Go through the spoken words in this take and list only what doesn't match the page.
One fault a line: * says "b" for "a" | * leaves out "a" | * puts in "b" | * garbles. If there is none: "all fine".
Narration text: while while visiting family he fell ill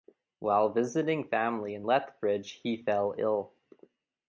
* leaves out "while"
* puts in "in lethbridge"